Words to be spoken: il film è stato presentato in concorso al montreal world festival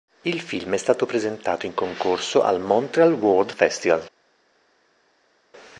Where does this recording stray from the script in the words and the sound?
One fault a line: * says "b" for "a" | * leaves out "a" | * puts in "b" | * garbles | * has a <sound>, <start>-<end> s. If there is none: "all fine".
all fine